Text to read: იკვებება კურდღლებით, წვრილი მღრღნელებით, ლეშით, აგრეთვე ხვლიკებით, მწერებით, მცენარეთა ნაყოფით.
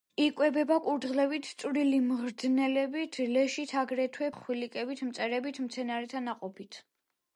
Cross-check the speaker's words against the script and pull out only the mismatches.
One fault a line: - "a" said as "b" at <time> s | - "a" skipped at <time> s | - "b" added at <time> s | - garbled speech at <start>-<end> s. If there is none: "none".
none